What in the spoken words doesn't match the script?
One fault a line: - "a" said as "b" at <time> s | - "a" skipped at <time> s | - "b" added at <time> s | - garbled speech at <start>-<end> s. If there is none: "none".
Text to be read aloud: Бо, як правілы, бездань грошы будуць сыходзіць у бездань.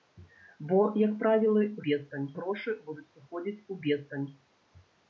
none